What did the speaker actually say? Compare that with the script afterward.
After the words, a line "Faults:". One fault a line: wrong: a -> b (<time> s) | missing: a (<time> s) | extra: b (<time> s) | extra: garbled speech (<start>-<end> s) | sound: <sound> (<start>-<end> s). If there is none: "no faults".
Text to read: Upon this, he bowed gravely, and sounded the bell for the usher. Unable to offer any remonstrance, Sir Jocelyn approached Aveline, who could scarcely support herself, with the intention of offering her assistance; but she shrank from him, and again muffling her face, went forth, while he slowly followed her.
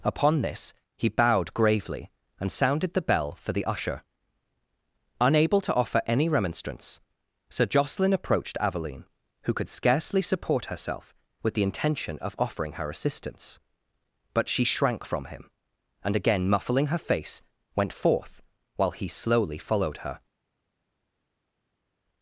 Upon this, he bowed gravely, and sounded the bell for the usher. Unable to offer any remonstrance, Sir Jocelyn approached Aveline, who could scarcely support herself, with the intention of offering her assistance; but she shrank from him, and again muffling her face, went forth, while he slowly followed her.
Faults:
no faults